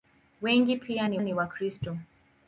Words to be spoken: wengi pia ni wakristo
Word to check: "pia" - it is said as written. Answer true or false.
true